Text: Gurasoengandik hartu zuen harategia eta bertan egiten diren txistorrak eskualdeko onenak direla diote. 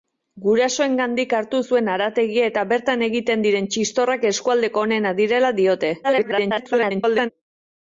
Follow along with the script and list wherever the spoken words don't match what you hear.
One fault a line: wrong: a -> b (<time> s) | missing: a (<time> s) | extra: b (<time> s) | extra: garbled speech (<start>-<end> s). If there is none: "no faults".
extra: garbled speech (6.0-7.3 s)